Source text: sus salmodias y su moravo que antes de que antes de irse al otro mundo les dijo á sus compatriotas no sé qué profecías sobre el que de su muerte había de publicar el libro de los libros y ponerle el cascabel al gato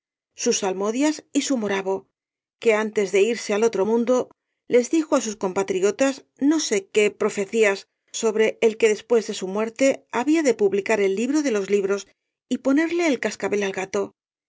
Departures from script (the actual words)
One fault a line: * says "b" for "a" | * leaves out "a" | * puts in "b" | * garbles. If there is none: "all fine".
* leaves out "que antes de"
* puts in "después"